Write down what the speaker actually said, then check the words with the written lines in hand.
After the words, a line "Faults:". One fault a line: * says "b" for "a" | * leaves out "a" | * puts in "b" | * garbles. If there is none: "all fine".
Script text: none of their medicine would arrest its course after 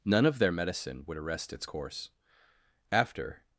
none of their medicine would arrest its course after
Faults:
all fine